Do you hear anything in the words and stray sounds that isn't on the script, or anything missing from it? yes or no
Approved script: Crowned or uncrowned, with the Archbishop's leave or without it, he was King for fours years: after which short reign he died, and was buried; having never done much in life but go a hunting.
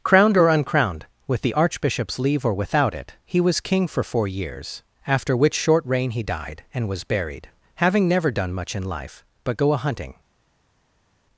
yes